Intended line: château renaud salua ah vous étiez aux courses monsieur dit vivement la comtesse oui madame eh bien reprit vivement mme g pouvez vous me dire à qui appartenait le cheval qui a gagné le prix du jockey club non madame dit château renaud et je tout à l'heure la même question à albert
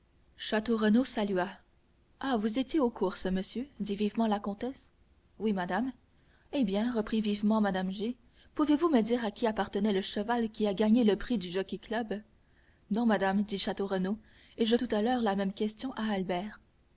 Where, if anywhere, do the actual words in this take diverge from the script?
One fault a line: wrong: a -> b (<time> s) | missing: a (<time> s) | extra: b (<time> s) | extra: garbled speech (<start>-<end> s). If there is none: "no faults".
no faults